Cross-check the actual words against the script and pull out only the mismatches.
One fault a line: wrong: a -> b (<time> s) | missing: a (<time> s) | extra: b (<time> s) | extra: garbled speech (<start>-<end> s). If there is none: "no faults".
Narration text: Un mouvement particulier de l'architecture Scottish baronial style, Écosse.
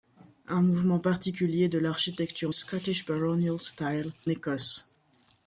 no faults